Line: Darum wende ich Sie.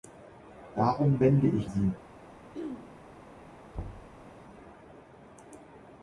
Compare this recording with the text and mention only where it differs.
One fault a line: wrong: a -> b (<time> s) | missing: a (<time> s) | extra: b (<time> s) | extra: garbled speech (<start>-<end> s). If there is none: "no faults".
no faults